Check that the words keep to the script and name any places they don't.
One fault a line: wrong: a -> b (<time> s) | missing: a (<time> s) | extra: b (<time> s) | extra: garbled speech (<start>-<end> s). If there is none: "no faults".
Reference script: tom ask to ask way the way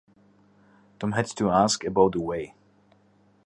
wrong: ask -> had (1.1 s)
wrong: way -> about (1.8 s)